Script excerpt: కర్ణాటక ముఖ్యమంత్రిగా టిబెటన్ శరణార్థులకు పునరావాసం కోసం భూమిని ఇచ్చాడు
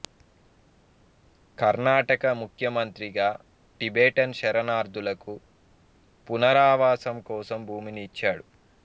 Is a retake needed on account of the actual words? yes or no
no